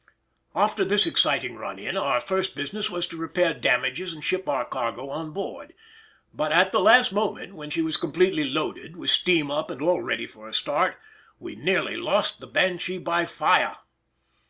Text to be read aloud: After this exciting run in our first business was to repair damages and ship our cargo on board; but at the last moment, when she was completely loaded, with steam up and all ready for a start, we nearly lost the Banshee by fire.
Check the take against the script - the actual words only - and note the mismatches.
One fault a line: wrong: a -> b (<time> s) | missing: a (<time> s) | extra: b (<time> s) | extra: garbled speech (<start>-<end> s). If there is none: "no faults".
no faults